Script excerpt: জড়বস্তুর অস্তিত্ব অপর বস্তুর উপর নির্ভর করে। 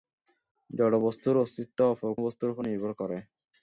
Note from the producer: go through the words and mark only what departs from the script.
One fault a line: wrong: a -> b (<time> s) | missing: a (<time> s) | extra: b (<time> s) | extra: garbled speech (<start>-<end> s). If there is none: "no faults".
no faults